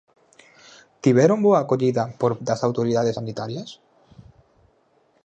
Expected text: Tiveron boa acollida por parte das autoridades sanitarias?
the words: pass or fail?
fail